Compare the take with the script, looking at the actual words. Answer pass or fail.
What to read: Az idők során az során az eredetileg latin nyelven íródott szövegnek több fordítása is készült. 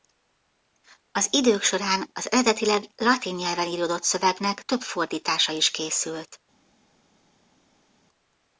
fail